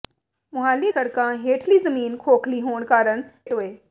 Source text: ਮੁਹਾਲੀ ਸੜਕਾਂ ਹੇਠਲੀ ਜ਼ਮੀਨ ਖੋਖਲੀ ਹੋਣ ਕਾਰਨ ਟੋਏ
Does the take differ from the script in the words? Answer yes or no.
no